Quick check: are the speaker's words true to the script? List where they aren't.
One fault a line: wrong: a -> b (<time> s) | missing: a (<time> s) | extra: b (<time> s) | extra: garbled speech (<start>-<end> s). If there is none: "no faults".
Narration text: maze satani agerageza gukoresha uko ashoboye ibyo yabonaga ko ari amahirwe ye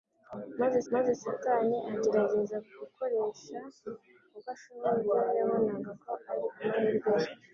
extra: maze (0.9 s)